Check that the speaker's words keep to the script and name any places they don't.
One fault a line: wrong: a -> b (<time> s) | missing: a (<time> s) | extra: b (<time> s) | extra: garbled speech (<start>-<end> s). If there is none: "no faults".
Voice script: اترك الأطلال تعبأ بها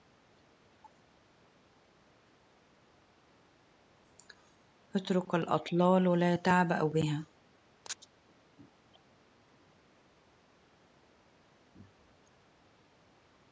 extra: لا (6.2 s)